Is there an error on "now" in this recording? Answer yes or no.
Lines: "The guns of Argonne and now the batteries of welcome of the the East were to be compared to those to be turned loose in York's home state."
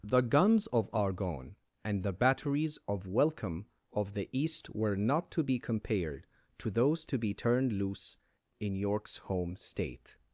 yes